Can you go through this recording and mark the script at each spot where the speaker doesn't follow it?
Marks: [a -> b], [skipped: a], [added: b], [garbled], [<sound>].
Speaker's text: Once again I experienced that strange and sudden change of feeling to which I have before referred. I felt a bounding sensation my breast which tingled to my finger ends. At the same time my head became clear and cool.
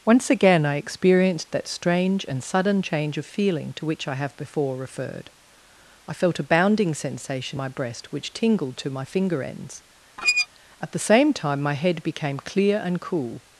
Once again I experienced that strange and sudden change of feeling to which I have before referred. I felt a bounding sensation my breast which tingled to my finger ends. [squeak] At the same time my head became clear and cool.